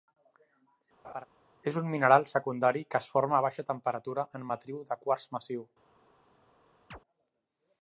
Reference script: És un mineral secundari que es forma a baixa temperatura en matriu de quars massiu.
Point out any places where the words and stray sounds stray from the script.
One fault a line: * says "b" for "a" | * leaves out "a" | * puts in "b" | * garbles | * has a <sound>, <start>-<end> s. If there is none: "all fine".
* has a laugh, 1.0-1.3 s
* has a chirp, 6.9-7.0 s